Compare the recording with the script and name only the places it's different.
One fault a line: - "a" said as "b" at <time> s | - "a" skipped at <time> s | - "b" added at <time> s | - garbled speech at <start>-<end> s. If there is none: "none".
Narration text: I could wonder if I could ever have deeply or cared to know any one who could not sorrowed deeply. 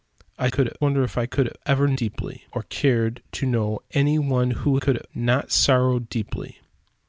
none